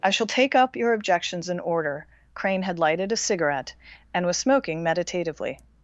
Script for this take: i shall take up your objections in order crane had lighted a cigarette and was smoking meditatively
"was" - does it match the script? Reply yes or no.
yes